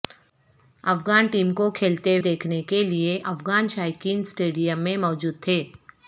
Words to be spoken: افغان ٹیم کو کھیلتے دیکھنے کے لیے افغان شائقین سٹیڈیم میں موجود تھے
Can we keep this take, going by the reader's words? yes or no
yes